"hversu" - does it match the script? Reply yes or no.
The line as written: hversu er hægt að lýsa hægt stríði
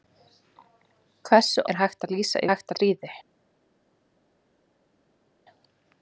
yes